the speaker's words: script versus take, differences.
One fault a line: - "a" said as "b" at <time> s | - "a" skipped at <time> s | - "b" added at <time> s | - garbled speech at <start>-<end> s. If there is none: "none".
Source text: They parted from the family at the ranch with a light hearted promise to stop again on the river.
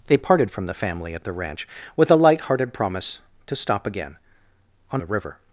none